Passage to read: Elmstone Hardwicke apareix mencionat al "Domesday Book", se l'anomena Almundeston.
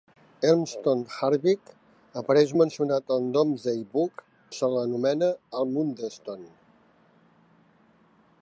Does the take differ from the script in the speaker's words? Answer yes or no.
no